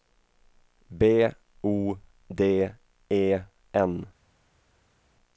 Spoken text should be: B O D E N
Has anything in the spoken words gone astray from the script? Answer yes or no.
no